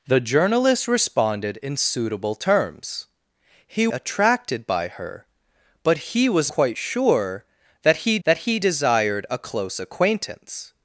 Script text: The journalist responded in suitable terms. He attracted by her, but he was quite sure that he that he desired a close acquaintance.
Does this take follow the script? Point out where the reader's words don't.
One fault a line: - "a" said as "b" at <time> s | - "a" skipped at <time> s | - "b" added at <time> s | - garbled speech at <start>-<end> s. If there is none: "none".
none